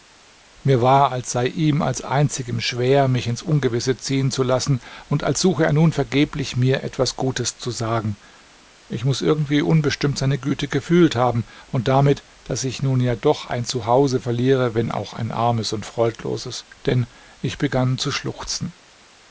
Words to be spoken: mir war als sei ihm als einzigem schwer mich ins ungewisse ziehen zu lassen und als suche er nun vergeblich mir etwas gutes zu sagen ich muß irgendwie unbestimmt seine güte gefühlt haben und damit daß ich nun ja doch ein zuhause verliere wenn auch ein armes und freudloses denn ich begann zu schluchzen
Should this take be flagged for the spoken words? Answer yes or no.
no